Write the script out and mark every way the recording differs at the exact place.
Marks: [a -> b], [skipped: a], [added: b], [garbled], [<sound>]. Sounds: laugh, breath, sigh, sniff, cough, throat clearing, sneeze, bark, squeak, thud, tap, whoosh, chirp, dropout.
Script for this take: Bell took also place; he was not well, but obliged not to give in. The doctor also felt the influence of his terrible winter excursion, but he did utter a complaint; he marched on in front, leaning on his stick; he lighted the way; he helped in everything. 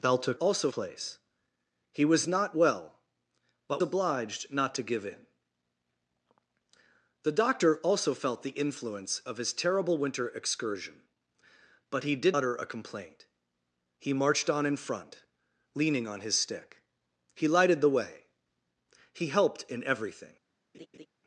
Bell took also place; he was not well, but obliged not to give in. The doctor also felt the influence of his terrible winter excursion, but he did utter a complaint; he marched on in front, leaning on his stick; he lighted the way; he helped in everything. [laugh]